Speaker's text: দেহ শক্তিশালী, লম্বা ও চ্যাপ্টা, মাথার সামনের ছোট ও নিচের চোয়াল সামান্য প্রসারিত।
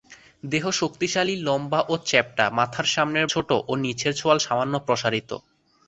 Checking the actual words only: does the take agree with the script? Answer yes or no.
yes